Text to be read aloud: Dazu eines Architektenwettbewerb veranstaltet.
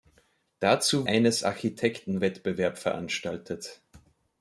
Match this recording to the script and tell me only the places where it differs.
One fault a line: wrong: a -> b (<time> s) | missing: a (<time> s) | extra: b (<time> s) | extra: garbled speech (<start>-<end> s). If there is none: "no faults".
no faults